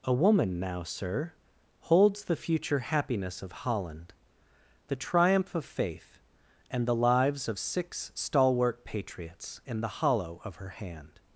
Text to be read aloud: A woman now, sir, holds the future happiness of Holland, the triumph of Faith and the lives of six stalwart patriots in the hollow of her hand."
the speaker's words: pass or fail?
pass